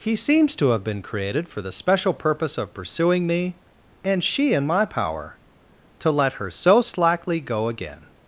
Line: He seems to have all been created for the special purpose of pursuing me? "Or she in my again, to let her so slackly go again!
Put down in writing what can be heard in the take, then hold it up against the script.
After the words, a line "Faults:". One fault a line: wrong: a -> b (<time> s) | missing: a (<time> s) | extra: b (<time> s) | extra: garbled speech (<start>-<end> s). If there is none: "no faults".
He seems to have been created for the special purpose of pursuing me? "And she in my power, to let her so slackly go again!
Faults:
missing: all (0.8 s)
wrong: Or -> And (4.0 s)
wrong: again -> power (4.8 s)